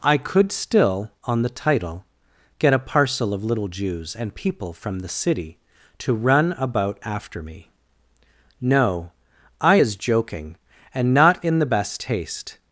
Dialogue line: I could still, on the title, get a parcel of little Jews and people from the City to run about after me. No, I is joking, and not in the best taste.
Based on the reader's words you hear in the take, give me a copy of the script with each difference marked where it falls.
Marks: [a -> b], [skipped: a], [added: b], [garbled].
I could still, on the title, get a parcel of little Jews and people from the City to run about after me. No, I is joking, and not in the best taste.